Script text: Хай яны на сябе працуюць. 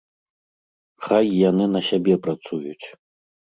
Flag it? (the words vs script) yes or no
no